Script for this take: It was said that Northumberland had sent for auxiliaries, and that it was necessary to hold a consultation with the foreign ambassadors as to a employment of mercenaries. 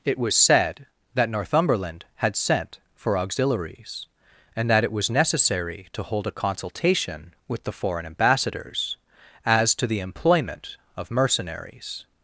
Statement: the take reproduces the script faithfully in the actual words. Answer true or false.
false